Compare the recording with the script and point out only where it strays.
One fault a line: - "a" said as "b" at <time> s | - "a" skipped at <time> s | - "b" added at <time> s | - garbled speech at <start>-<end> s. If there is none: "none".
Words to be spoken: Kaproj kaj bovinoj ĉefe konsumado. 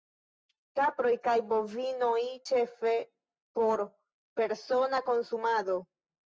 - "por persona" added at 3.6 s